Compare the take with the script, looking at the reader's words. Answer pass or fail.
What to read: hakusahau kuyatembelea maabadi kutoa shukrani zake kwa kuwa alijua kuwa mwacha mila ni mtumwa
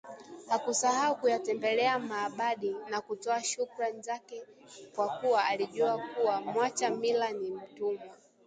fail